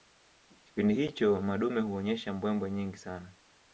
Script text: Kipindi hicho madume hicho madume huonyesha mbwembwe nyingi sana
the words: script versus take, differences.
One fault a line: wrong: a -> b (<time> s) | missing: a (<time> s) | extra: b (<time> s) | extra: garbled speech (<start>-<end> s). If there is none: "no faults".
missing: hicho madume (1.8 s)